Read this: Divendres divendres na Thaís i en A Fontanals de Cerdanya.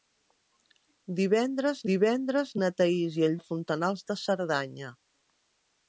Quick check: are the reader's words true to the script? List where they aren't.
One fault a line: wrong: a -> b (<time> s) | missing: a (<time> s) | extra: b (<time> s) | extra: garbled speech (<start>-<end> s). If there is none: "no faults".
no faults